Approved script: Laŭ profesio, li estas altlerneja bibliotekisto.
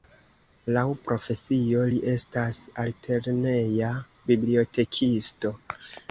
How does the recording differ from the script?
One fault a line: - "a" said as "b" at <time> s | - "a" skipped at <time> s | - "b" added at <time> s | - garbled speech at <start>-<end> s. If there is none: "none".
none